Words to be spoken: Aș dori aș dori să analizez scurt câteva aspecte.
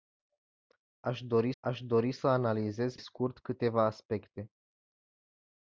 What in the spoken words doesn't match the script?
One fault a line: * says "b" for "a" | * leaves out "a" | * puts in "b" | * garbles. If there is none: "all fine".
all fine